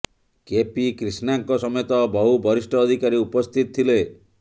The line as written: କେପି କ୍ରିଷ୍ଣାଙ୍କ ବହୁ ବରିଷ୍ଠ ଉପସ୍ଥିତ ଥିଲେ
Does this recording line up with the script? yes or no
no